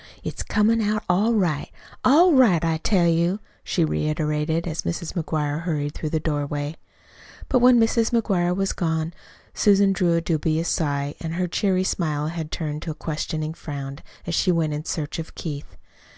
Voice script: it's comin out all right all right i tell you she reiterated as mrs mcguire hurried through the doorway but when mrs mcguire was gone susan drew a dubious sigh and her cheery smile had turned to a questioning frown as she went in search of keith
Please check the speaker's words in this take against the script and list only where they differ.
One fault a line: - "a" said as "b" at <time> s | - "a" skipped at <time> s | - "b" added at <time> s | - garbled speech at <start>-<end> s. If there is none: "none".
none